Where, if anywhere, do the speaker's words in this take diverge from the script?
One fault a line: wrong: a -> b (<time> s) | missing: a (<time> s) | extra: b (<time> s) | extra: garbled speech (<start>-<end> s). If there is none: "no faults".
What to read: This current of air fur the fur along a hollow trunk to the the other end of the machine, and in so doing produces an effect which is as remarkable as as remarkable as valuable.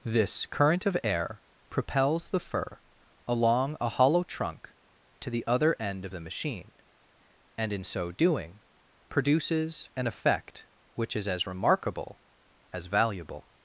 wrong: fur -> propels (1.7 s)
missing: the (5.5 s)
missing: as remarkable as (12.9 s)